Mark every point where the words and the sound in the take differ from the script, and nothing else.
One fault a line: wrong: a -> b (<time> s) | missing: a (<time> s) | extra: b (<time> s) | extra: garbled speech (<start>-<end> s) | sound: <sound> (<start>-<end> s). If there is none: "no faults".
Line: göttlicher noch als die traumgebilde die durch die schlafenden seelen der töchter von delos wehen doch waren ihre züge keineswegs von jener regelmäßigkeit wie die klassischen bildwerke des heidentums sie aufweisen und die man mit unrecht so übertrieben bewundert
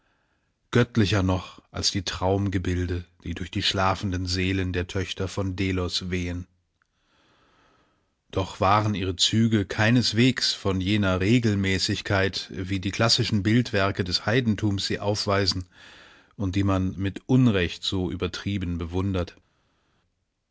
no faults